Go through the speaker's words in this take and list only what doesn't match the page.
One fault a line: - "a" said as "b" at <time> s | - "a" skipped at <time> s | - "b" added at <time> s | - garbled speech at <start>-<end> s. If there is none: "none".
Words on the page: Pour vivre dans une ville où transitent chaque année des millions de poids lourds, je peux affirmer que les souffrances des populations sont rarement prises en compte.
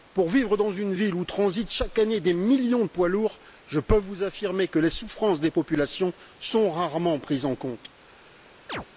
- "vous" added at 4.0 s